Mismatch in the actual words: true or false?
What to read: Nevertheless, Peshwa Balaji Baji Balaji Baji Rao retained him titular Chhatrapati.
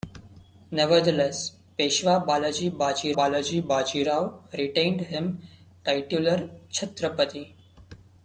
false